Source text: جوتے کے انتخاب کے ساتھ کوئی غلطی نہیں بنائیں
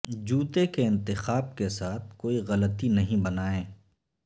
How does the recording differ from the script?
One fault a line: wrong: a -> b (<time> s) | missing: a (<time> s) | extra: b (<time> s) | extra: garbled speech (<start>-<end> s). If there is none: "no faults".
no faults